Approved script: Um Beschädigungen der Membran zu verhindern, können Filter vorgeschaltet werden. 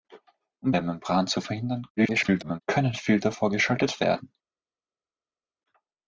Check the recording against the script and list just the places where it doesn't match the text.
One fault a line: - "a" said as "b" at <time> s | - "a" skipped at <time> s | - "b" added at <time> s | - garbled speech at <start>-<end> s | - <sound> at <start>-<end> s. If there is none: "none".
- "Beschädigungen" skipped at 0.7 s
- garbled speech at 2.0-2.6 s